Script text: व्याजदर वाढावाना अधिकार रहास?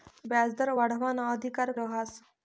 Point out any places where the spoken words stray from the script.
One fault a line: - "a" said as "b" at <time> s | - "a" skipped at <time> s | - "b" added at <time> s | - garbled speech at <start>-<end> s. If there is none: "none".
none